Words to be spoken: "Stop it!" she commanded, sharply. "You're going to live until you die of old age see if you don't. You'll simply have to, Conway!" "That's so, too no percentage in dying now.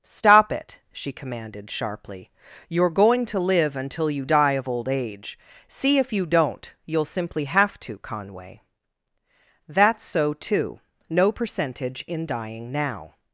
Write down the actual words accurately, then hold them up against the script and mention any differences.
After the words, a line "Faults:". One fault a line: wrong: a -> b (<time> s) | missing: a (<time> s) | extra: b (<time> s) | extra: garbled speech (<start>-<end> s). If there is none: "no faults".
"Stop it!" she commanded, sharply. "You're going to live until you die of old age see if you don't. You'll simply have to, Conway!" "That's so, too no percentage in dying now.
Faults:
no faults